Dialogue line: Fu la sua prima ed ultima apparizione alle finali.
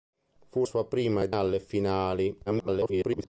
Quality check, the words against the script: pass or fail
fail